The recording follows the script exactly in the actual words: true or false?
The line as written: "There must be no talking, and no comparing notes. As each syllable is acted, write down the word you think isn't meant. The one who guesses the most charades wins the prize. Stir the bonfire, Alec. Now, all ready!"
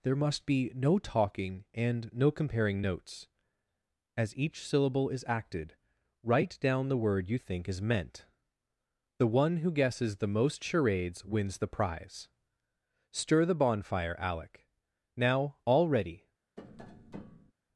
false